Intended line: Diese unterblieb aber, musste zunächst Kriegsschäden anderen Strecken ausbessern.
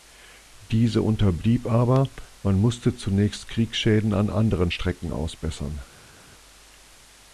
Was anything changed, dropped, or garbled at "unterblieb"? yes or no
no